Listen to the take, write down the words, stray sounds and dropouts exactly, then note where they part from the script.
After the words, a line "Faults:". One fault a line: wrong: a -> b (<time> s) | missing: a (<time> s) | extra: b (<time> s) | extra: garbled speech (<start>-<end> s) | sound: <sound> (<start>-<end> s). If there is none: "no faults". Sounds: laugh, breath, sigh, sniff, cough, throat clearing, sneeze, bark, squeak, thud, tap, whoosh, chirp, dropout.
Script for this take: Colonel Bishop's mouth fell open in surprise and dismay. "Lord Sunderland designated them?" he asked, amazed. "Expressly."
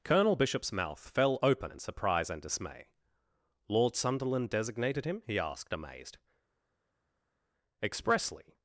Colonel Bishop's mouth fell open in surprise and dismay. "Lord Sunderland designated him?" he asked, amazed. "Expressly."
Faults:
wrong: them -> him (5.1 s)